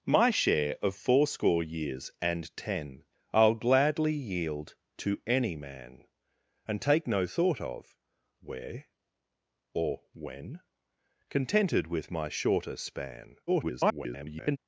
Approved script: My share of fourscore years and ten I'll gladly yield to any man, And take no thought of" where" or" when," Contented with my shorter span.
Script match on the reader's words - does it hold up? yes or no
no